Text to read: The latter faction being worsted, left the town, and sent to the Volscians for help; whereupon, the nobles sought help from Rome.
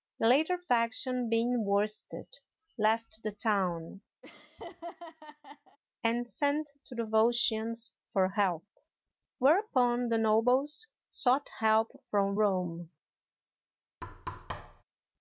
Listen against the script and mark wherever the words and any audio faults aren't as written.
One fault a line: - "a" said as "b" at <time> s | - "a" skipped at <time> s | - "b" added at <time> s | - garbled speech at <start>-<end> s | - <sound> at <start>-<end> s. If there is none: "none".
- laugh at 4.2-5.8 s
- thud at 14.0-14.8 s